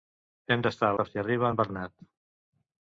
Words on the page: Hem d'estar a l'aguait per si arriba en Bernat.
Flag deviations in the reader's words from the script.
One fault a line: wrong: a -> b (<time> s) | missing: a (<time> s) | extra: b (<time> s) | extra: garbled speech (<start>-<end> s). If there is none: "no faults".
missing: l'aguait (0.9 s)